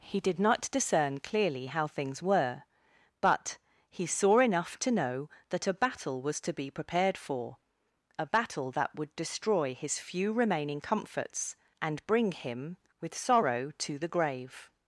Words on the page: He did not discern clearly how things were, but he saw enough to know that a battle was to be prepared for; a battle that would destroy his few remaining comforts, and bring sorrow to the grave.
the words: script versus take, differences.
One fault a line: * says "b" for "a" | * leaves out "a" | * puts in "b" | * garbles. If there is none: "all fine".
* puts in "him with"